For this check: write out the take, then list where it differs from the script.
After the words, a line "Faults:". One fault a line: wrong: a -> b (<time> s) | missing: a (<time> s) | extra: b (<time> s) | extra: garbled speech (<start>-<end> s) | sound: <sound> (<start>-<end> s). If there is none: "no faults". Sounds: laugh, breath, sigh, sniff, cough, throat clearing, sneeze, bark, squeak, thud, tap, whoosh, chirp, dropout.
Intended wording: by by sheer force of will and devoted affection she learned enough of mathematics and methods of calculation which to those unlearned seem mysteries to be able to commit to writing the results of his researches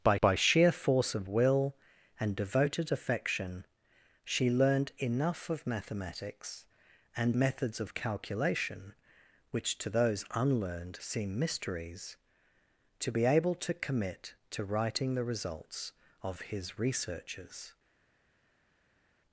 by by sheer force of will and devoted affection she learned enough of mathematics and methods of calculation which to those unlearned seem mysteries to be able to commit to writing the results of his researches
Faults:
no faults